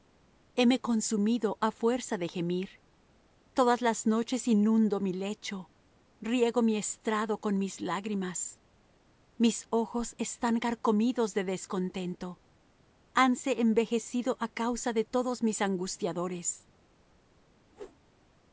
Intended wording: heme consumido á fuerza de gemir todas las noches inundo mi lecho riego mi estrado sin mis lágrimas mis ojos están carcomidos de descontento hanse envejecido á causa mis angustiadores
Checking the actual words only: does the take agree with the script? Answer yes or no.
no